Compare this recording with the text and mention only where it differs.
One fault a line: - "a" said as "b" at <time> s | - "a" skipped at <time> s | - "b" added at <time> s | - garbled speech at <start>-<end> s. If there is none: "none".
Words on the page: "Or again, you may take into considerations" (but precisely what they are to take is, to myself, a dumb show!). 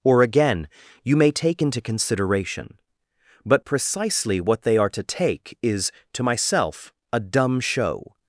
- "considerations" said as "consideration" at 1.8 s